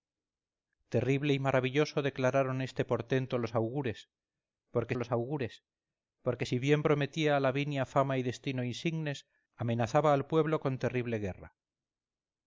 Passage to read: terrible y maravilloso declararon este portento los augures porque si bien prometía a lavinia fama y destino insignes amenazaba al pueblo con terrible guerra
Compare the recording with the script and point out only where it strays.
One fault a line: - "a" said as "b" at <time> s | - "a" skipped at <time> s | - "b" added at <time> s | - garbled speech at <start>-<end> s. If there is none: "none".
- "los augures porque" added at 4.9 s